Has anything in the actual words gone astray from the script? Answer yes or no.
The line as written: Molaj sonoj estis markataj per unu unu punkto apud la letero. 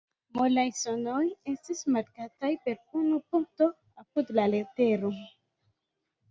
yes